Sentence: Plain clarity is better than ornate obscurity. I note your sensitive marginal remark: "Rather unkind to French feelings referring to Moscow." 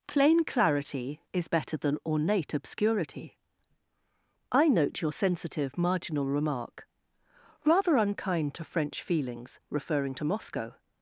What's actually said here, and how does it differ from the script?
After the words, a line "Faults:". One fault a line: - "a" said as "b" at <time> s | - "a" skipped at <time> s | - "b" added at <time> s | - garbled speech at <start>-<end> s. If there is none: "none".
Plain clarity is better than ornate obscurity. I note your sensitive marginal remark: "Rather unkind to French feelings referring to Moscow."
Faults:
none